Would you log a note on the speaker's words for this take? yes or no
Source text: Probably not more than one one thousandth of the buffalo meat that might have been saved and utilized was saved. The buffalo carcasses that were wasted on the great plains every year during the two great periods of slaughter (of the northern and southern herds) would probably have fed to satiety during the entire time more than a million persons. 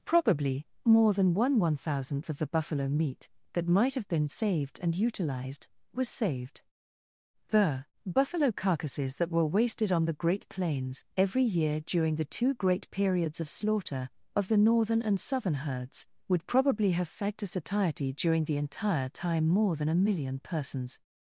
yes